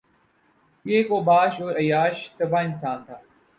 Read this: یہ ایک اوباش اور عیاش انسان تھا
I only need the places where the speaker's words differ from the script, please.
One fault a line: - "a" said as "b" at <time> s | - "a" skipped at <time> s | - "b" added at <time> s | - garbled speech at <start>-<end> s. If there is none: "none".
- "طبع" added at 2.4 s